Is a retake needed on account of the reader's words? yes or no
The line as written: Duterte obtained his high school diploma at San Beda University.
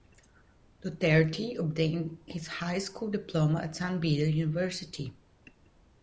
no